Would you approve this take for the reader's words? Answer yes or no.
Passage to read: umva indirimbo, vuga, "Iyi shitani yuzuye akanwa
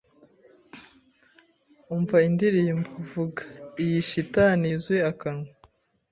yes